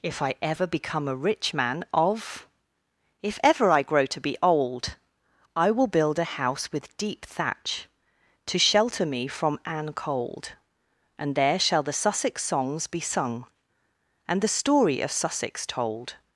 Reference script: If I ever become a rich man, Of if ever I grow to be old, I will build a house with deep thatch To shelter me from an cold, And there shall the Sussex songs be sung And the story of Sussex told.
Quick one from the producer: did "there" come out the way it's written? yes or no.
yes